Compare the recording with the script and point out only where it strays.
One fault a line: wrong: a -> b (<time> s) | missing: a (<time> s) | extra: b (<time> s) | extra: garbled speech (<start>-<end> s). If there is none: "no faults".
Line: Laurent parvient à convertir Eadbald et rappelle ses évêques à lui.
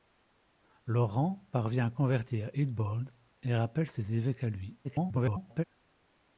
extra: garbled speech (4.8-5.6 s)